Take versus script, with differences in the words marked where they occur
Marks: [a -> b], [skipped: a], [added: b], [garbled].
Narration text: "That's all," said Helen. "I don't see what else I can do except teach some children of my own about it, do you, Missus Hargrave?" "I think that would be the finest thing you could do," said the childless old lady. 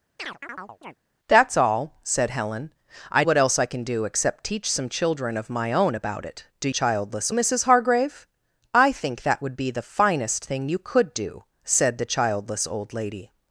"That's all," said Helen. "I [skipped: don't see] what else I can do except teach some children of my own about it, do [you, -> childless] Missus Hargrave?" "I think that would be the finest thing you could do," said the childless old lady.